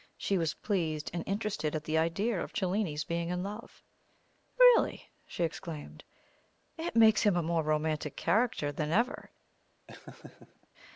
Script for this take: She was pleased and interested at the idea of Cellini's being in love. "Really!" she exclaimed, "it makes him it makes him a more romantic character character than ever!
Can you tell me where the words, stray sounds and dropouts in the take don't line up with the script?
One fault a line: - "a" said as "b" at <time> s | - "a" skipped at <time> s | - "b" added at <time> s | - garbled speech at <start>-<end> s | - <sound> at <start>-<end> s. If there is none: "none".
- "it makes him" skipped at 7.3 s
- "character" skipped at 8.7 s
- laugh at 9.9-10.7 s